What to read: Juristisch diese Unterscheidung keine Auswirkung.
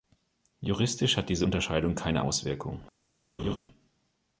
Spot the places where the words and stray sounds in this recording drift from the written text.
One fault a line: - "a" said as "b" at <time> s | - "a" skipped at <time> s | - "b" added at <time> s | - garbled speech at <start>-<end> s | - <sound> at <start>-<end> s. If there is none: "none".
- "hat" added at 1.1 s
- laugh at 3.4-3.6 s